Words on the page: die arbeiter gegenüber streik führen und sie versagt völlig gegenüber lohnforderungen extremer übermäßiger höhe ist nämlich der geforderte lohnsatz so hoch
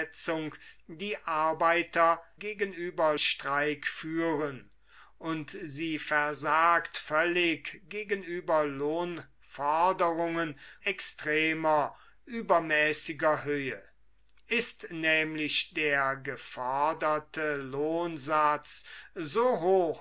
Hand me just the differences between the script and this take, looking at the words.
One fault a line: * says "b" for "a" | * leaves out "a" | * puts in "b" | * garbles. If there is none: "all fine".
all fine